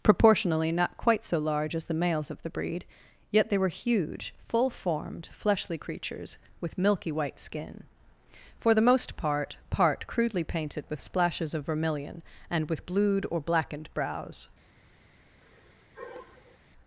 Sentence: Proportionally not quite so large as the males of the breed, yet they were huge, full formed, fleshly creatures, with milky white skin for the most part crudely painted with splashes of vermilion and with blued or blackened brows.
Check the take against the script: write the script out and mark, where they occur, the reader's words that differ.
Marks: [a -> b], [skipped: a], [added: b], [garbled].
Proportionally not quite so large as the males of the breed, yet they were huge, full formed, fleshly creatures, with milky white skin for the most part [added: part] crudely painted with splashes of vermilion and with blued or blackened brows.